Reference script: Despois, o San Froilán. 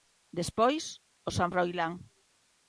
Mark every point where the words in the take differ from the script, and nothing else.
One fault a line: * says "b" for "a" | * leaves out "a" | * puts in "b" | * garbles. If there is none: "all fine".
all fine